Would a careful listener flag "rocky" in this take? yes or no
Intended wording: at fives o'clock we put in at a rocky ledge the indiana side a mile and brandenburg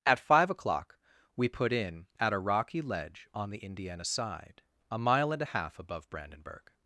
no